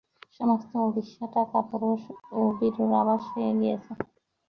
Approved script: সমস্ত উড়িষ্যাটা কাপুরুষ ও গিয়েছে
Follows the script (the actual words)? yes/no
no